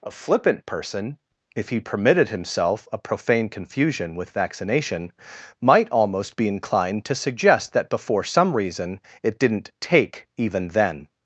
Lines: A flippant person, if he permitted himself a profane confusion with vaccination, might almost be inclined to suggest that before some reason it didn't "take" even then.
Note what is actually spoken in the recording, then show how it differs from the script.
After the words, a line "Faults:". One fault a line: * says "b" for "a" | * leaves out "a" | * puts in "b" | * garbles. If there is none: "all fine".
A flippant person, if he permitted himself a profane confusion with vaccination, might almost be inclined to suggest that before some reason it didn't "take" even then.
Faults:
all fine